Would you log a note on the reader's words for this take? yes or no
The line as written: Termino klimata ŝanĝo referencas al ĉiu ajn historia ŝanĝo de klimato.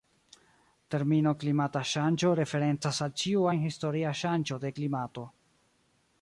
no